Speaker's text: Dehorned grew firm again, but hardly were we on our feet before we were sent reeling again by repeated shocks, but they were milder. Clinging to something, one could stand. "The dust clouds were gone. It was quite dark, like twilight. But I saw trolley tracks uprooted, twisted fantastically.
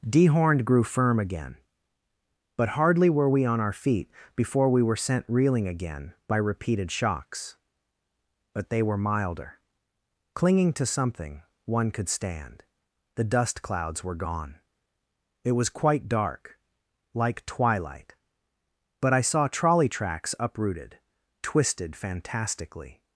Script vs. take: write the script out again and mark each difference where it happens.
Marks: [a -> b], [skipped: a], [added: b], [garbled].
Dehorned grew firm again, but hardly were we on our feet before we were sent reeling again by repeated shocks, but they were milder. Clinging to something, one could stand. "The dust clouds were gone. It was quite dark, like twilight. But I saw trolley tracks uprooted, twisted fantastically.